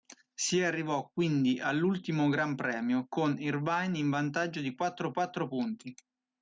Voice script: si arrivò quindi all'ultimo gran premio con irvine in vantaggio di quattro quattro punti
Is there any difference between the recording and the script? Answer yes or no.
no